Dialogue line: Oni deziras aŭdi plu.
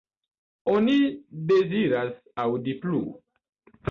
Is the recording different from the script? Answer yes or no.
no